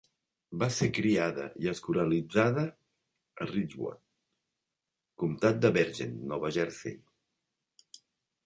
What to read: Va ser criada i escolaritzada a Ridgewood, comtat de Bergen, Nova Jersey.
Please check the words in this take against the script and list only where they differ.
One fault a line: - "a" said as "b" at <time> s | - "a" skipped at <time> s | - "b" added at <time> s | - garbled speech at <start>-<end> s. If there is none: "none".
none